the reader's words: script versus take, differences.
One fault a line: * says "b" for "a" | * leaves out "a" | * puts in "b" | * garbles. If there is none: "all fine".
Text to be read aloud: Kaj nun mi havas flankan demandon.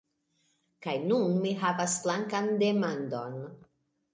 all fine